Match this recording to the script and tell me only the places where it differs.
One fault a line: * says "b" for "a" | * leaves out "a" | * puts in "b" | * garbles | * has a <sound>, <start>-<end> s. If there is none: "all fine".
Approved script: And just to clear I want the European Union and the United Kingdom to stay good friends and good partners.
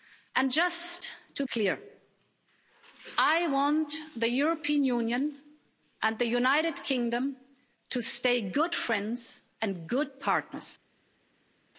all fine